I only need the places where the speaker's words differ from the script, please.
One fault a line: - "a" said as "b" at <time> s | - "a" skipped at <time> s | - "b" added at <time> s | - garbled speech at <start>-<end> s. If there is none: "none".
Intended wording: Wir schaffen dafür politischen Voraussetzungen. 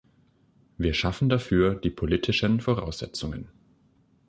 - "die" added at 1.8 s